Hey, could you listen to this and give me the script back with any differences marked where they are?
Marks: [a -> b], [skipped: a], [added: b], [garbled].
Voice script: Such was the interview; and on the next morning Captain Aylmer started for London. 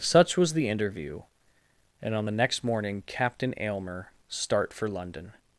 Such was the interview; and on the next morning Captain Aylmer [started -> start] for London.